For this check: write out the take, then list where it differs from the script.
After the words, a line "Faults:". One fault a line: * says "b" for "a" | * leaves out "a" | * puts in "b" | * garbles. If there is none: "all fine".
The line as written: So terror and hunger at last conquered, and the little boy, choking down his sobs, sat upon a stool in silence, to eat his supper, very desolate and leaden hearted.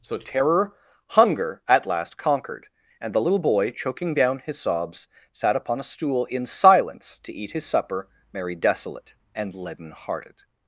So terror hunger at last conquered, and the little boy, choking down his sobs, sat upon a stool in silence, to eat his supper, merry desolate and leaden hearted.
Faults:
* leaves out "and"
* says "merry" for "very"